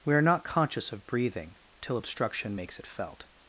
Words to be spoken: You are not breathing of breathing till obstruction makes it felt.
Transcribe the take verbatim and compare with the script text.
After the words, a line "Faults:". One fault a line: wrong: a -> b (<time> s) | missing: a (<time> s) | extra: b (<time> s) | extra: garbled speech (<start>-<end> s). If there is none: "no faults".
We are not conscious of breathing till obstruction makes it felt.
Faults:
wrong: You -> We (0.0 s)
wrong: breathing -> conscious (0.4 s)